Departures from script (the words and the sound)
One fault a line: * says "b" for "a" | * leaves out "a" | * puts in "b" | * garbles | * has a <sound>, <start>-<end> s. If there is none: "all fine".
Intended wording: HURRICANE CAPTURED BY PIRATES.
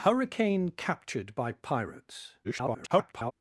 * garbles